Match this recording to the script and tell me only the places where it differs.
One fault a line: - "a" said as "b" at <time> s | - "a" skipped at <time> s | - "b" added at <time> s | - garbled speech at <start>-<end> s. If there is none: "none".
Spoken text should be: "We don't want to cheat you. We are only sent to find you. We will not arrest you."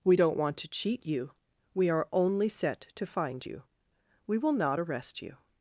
- "sent" said as "set" at 2.5 s